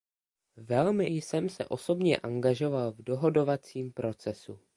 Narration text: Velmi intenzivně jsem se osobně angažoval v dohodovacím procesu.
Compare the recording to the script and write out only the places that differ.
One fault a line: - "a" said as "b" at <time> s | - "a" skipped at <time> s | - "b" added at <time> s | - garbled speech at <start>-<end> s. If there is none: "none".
- "intenzivně" skipped at 1.1 s